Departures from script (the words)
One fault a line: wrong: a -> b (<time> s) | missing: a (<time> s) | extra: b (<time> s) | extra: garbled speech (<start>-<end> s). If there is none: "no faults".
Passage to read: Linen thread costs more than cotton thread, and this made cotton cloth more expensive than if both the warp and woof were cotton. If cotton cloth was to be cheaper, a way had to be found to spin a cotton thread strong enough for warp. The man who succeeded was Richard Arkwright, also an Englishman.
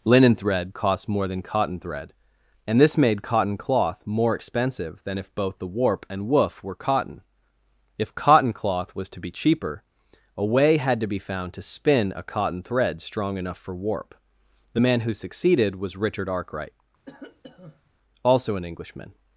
wrong: costs -> cost (0.7 s)